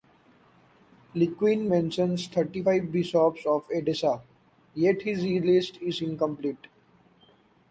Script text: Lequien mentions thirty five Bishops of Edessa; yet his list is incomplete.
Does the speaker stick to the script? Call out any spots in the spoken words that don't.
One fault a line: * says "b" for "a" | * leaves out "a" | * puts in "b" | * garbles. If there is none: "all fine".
all fine